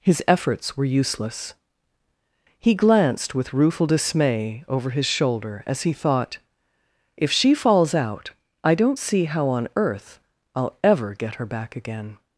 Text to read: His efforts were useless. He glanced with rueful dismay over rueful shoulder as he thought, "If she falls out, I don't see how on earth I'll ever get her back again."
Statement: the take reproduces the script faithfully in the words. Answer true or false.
false